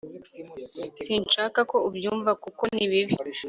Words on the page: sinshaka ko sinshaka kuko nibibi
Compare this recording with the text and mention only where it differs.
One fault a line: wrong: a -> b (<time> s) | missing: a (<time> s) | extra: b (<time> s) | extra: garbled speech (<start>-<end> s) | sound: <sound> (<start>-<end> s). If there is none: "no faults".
wrong: sinshaka -> ubyumva (1.9 s)